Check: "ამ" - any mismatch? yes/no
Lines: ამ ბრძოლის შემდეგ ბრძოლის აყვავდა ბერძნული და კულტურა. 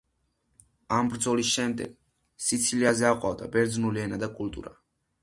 no